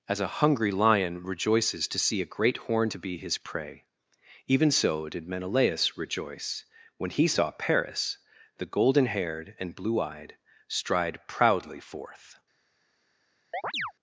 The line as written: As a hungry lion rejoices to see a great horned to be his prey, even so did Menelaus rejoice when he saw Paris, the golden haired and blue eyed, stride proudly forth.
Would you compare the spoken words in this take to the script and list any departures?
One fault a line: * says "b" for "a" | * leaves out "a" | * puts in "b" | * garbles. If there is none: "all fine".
all fine